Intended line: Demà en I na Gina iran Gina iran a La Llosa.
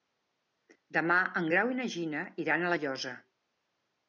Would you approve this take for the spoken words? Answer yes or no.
no